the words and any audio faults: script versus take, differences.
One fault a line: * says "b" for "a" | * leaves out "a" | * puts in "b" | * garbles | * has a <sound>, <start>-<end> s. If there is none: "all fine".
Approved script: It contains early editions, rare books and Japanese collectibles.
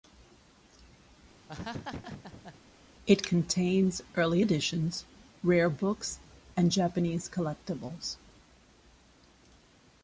* has a laugh, 1.5-2.6 s